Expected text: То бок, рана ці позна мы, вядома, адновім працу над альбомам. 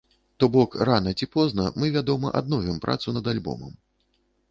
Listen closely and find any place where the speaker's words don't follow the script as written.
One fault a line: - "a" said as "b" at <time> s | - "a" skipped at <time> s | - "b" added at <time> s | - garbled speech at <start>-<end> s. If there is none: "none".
none